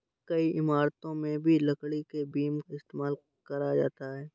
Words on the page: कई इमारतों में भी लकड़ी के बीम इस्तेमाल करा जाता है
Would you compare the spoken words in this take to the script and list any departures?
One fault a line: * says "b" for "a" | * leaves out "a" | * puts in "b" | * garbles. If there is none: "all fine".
all fine